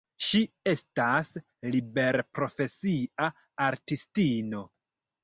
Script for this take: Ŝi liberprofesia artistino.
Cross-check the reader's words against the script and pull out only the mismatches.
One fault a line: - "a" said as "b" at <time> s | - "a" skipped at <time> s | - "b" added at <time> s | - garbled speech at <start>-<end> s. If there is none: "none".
- "estas" added at 0.7 s